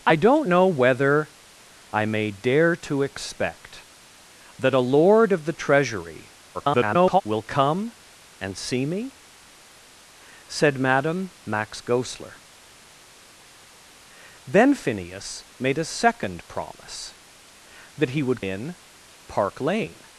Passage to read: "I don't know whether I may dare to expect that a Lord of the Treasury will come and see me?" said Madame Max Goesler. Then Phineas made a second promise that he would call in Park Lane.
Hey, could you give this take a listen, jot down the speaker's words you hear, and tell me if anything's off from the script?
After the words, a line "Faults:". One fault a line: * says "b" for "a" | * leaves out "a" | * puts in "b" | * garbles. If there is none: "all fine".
"I don't know whether I may dare to expect that a Lord of the Treasury [garbled] will come and see me?" said Madame Max Goesler. Then Phineas made a second promise that he would in Park Lane.
Faults:
* garbles
* leaves out "call"